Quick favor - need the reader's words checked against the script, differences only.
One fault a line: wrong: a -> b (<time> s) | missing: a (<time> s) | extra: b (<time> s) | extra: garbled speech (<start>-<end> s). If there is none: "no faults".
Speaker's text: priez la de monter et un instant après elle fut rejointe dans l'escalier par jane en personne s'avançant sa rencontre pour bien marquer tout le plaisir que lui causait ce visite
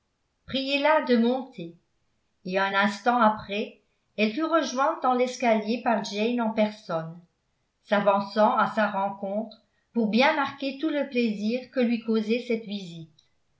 extra: à (8.6 s)
wrong: ce -> cette (12.5 s)